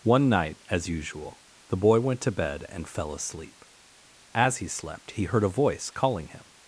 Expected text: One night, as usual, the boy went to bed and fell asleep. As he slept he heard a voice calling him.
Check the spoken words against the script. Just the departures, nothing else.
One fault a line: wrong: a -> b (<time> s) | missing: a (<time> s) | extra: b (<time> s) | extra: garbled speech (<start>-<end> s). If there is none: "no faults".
no faults